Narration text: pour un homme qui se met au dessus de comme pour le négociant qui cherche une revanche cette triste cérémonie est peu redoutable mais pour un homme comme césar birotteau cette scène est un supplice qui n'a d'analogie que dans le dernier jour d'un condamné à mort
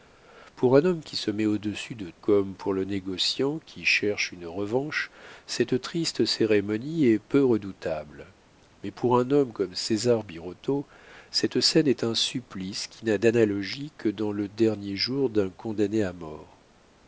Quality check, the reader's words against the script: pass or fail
pass